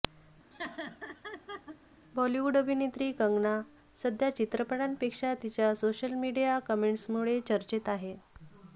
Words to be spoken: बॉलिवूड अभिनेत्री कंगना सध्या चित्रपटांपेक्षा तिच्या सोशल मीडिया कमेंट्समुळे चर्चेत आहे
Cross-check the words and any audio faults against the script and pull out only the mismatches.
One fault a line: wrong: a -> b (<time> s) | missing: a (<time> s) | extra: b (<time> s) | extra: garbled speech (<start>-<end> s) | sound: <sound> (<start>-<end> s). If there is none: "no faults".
sound: laugh (0.5-1.8 s)